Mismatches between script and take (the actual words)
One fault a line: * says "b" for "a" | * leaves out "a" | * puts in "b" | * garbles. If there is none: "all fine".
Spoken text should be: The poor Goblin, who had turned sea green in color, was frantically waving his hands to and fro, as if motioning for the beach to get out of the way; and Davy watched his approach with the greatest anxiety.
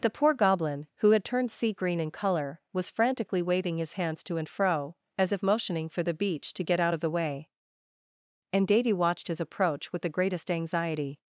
all fine